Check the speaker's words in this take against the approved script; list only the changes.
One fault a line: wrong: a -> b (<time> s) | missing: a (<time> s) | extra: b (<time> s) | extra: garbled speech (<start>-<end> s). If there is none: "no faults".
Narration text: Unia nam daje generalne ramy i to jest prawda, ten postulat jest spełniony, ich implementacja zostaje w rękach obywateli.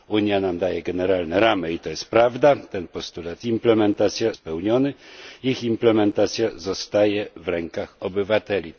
wrong: jest -> implementacja (3.5 s)